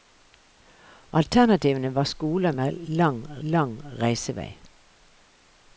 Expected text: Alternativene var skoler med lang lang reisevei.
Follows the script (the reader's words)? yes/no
yes